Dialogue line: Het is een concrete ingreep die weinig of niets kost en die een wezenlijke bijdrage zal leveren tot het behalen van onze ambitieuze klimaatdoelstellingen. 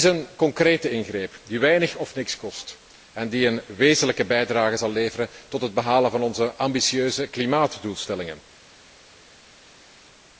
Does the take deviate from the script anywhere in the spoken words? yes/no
no